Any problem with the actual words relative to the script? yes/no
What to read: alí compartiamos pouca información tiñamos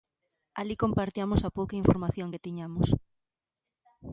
yes